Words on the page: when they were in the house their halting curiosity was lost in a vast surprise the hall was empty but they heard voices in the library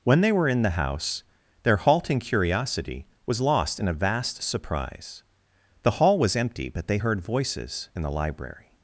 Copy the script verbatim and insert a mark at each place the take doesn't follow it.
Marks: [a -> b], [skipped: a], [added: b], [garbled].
when they were in the house their halting curiosity was lost in a vast surprise the hall was empty but they heard voices in the library